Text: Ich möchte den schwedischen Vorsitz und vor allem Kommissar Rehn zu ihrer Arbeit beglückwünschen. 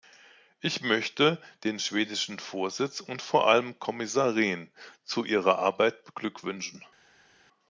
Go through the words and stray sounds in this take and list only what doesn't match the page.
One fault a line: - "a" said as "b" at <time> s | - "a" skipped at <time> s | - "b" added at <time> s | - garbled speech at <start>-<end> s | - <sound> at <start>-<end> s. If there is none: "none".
none